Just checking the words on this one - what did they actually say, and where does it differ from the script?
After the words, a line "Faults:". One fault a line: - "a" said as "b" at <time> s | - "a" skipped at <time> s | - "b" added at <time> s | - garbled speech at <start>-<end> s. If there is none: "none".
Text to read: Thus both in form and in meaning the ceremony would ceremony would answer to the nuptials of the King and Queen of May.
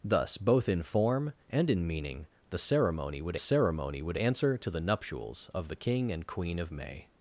Thus both in form and in meaning the ceremony would ceremony would answer to the nuptials of the King and Queen of May.
Faults:
none